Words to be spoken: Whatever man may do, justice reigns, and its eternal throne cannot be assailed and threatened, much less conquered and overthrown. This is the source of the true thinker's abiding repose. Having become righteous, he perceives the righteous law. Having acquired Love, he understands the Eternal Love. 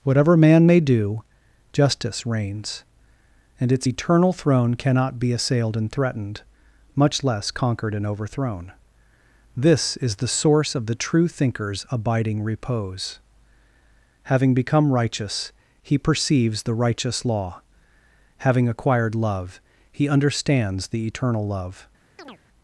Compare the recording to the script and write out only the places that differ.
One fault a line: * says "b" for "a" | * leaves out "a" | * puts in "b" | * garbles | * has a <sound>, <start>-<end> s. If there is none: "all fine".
* has a chirp, 22.2-22.4 s